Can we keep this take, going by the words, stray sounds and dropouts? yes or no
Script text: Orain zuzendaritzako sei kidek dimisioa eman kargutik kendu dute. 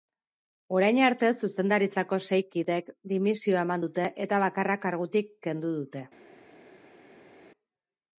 no